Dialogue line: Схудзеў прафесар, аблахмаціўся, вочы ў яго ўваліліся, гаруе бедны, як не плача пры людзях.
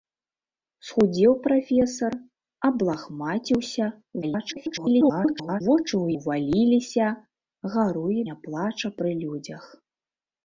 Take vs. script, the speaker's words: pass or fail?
fail